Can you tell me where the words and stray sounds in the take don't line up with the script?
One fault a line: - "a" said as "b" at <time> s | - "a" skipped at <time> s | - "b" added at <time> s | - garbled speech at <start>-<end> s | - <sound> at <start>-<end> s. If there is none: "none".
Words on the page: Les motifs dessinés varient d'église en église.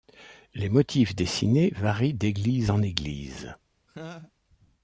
- laugh at 3.9-4.3 s